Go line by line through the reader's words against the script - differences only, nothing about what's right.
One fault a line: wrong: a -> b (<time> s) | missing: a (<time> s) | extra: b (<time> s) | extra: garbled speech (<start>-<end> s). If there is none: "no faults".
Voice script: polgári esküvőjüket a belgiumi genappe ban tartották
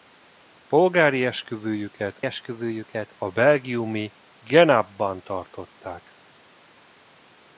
extra: esküvőjüket (2.2 s)